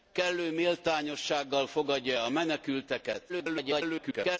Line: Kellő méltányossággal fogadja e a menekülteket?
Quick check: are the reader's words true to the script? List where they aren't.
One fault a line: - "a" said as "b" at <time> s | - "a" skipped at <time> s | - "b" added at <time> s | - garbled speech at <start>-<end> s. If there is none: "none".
- garbled speech at 3.3-4.4 s